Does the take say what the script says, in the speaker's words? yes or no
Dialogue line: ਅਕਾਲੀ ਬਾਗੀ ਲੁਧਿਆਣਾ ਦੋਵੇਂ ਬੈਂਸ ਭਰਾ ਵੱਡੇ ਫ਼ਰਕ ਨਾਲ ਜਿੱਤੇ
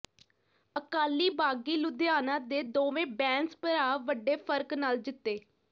no